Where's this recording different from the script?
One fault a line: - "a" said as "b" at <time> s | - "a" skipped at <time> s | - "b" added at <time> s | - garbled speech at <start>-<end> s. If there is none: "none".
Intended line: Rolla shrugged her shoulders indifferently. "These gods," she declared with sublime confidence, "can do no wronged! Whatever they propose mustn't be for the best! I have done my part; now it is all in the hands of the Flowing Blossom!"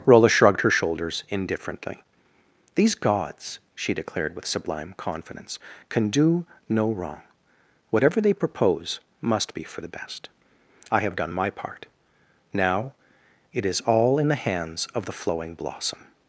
- "wronged" said as "wrong" at 6.9 s
- "mustn't" said as "must" at 9.2 s